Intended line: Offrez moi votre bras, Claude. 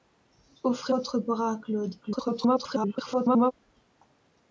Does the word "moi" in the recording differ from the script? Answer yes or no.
yes